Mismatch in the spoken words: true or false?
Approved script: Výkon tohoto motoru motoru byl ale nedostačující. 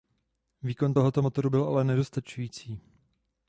true